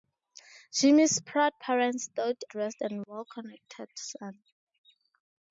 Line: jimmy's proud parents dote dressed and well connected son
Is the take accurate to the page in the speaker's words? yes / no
yes